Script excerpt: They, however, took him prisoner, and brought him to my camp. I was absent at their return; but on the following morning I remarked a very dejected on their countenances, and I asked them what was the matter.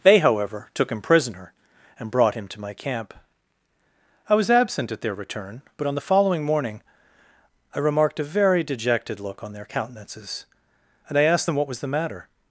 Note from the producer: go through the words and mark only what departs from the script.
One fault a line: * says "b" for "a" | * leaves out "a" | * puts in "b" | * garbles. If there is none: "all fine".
* puts in "look"